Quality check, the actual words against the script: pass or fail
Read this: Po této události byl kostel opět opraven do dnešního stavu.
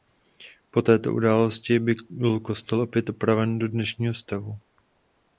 pass